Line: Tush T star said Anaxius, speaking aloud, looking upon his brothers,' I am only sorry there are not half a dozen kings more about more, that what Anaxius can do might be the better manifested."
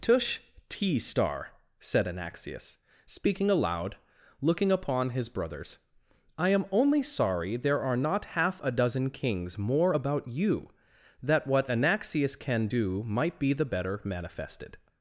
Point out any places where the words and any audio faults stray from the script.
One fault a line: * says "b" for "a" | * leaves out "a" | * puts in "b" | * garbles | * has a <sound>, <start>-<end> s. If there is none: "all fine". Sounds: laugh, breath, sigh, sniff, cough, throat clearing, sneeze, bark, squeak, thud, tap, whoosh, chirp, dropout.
* says "you" for "more"